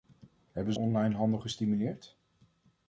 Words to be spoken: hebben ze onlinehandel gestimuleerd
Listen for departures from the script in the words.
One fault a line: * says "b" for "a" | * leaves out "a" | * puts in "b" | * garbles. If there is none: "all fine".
* leaves out "ze"